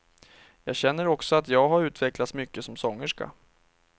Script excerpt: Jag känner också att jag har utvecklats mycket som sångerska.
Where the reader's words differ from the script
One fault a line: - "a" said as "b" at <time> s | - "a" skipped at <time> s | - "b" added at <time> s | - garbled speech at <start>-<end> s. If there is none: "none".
none